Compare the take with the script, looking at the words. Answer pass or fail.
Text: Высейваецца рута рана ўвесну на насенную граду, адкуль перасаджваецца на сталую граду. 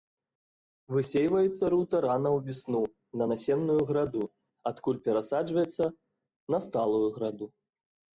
pass